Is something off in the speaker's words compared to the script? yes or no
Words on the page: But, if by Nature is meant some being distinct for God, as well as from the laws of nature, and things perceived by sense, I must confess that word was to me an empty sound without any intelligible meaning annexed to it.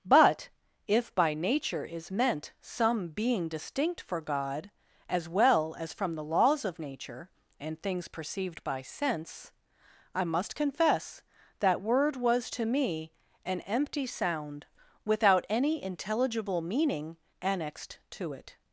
no